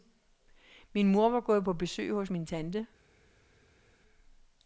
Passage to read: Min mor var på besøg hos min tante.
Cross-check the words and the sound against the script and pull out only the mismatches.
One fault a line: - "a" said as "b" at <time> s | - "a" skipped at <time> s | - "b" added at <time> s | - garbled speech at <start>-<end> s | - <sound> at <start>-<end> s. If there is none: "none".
- "gået" added at 1.4 s